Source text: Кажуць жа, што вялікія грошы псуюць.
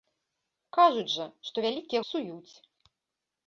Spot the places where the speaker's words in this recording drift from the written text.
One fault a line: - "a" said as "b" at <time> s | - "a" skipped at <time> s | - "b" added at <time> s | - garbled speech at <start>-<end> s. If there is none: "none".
- "грошы" skipped at 2.0 s